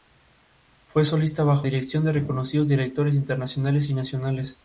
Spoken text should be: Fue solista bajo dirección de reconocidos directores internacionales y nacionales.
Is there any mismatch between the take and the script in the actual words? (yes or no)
no